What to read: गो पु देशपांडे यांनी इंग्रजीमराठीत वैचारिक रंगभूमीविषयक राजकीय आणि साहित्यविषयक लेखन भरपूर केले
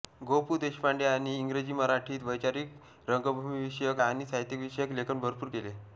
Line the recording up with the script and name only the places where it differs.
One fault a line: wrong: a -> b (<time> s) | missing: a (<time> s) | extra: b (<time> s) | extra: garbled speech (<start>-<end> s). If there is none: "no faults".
missing: राजकीय (4.0 s)